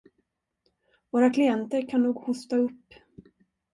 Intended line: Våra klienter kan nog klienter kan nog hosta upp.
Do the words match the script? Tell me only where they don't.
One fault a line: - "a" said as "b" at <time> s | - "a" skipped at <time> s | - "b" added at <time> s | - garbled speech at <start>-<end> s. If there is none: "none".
- "klienter kan nog" skipped at 2.1 s